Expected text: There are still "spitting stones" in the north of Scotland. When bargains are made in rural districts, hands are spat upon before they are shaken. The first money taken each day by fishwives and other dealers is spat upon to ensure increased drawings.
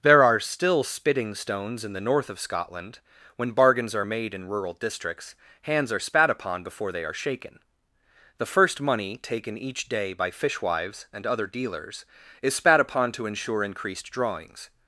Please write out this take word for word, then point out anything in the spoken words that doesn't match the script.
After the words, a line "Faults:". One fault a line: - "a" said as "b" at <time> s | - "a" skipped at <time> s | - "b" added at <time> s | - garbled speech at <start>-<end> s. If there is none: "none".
There are still "spitting stones" in the north of Scotland. When bargains are made in rural districts, hands are spat upon before they are shaken. The first money taken each day by fishwives and other dealers is spat upon to ensure increased drawings.
Faults:
none